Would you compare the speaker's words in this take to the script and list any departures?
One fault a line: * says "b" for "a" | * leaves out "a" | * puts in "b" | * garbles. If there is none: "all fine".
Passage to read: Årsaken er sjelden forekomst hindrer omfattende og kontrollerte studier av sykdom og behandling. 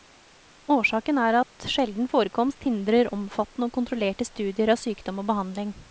* puts in "at"